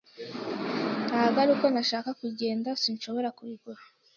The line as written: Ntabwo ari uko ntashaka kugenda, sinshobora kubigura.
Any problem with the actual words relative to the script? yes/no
no